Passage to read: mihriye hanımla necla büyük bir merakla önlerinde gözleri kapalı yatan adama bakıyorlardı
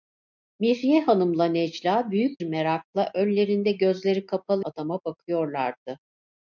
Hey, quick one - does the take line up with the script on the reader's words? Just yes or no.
no